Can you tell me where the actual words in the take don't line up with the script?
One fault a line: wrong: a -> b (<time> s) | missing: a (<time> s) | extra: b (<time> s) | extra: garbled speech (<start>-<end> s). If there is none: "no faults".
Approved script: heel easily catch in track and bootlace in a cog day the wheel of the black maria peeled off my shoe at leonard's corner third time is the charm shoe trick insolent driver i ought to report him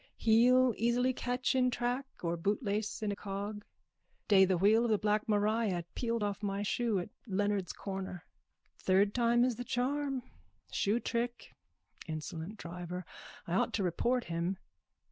wrong: and -> or (2.2 s)